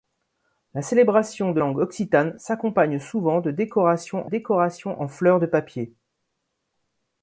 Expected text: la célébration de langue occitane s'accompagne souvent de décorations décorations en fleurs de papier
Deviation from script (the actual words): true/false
false